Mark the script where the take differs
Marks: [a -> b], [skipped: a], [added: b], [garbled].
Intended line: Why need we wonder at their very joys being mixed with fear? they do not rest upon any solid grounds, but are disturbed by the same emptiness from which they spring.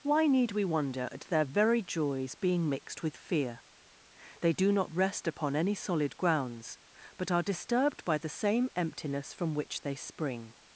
Why need we wonder at their very joys being mixed with fear? they do not rest upon any solid grounds, but are disturbed by the same emptiness from which they spring.